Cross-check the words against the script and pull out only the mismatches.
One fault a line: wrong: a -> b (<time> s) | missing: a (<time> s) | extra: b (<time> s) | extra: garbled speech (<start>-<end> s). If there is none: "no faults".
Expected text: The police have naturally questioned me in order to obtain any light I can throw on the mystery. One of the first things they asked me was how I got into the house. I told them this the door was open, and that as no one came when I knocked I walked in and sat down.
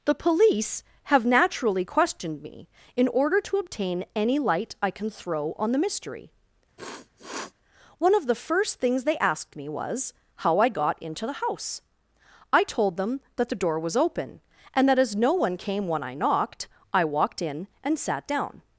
wrong: this -> that (13.4 s)